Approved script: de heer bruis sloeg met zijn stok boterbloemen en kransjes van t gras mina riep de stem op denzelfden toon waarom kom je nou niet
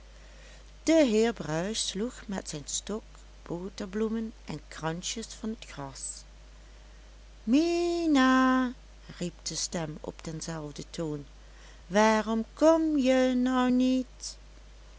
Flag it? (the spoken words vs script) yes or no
no